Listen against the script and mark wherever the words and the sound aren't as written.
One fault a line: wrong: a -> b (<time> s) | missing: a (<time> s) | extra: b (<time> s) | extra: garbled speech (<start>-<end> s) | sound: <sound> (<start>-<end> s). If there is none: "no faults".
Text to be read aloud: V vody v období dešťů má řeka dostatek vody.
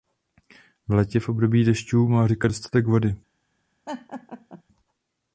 wrong: vody -> létě (0.9 s)
sound: laugh (3.9-4.6 s)